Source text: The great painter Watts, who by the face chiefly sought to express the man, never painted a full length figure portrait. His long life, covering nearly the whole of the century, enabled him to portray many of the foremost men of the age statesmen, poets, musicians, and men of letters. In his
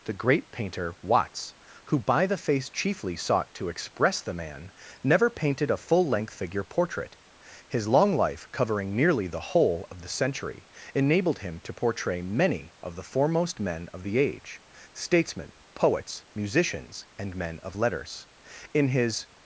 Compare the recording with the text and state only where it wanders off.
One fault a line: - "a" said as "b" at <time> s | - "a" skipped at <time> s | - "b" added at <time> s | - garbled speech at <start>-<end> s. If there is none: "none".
none